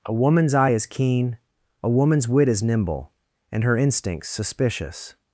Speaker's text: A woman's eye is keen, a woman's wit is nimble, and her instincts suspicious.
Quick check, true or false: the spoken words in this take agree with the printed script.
true